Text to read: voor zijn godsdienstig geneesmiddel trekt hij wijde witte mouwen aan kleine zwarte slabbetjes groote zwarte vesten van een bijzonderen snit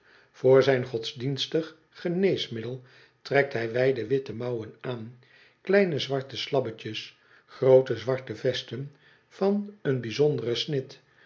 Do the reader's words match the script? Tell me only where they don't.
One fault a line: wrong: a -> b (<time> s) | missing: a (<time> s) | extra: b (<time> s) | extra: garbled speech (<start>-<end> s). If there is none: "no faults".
no faults